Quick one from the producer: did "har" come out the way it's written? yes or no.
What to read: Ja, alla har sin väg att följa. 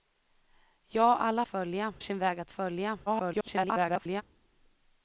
no